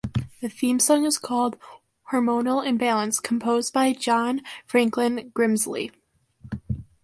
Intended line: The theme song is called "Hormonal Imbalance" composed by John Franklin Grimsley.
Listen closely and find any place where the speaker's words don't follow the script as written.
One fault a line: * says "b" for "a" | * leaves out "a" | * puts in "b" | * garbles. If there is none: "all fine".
all fine